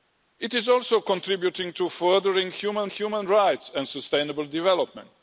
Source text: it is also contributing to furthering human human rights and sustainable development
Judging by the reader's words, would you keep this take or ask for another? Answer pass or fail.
pass